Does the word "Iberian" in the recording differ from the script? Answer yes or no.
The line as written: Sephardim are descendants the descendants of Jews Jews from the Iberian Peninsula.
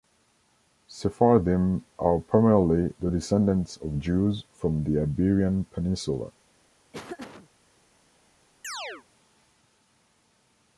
no